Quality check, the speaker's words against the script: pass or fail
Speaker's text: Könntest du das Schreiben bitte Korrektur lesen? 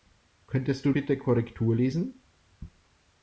fail